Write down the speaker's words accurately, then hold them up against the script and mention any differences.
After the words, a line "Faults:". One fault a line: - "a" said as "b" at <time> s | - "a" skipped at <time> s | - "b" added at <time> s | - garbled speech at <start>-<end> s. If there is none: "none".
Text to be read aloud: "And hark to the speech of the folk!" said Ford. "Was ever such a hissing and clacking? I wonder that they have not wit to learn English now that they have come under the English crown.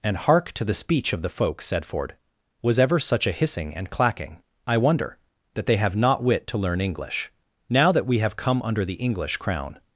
"And hark to the speech of the folk!" said Ford. "Was ever such a hissing and clacking? I wonder that they have not wit to learn English now that we have come under the English crown.
Faults:
- "they" said as "we" at 8.1 s